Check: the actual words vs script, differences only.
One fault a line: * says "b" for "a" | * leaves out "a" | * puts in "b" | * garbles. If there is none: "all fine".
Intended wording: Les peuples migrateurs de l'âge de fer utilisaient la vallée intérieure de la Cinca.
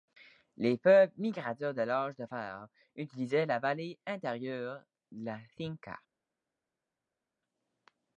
all fine